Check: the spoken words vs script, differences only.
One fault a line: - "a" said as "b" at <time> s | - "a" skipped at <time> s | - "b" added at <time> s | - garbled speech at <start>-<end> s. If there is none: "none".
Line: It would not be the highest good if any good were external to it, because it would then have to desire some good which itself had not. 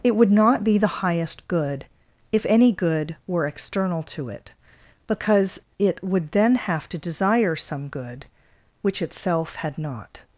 none